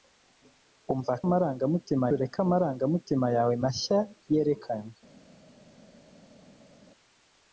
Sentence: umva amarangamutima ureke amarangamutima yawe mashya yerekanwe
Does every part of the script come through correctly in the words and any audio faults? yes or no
yes